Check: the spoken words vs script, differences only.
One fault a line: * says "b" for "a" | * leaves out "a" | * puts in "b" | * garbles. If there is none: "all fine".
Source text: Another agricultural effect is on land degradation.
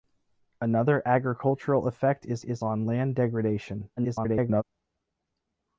* puts in "is"
* garbles